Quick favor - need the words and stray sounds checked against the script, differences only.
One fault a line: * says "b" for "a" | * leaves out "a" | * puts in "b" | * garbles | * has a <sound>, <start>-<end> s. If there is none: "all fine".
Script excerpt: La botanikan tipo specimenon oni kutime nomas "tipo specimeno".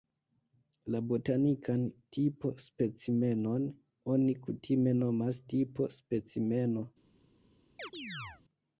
* has a chirp, 7.8-8.4 s